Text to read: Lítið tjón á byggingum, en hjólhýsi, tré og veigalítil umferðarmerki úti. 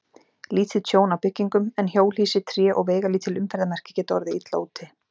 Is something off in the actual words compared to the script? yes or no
yes